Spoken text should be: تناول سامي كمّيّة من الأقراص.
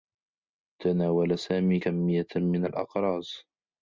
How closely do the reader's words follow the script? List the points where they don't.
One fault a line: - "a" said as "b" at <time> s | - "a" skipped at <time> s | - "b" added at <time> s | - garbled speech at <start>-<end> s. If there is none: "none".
none